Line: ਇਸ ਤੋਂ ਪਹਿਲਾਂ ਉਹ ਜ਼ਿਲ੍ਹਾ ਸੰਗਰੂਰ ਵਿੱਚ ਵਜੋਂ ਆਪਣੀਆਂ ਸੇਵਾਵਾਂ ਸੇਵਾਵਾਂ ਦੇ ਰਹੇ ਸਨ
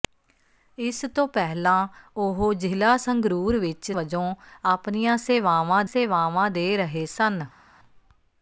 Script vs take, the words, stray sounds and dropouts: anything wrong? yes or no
no